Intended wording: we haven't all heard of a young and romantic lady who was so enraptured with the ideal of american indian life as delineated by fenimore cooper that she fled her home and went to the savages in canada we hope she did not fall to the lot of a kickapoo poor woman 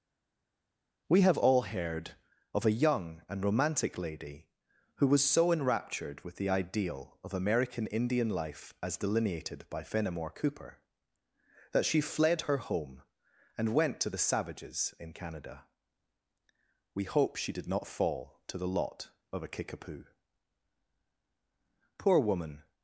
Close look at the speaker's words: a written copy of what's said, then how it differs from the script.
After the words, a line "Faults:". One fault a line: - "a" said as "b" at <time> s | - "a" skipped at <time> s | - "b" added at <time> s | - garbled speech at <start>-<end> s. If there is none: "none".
we have all heard of a young and romantic lady who was so enraptured with the ideal of american indian life as delineated by fenimore cooper that she fled her home and went to the savages in canada we hope she did not fall to the lot of a kickapoo poor woman
Faults:
- "haven't" said as "have" at 1.2 s